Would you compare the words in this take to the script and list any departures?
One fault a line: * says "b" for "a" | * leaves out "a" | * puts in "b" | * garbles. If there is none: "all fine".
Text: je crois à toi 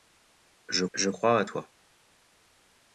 * puts in "je"